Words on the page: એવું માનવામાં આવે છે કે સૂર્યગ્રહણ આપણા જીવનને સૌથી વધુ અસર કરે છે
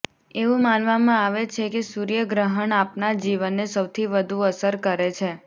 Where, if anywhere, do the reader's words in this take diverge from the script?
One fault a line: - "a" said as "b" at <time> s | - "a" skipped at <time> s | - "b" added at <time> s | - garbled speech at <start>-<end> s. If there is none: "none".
none